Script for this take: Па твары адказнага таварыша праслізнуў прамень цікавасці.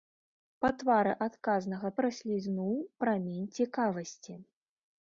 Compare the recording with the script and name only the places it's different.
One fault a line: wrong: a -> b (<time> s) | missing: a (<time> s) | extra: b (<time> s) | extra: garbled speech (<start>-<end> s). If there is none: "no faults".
missing: таварыша (1.9 s)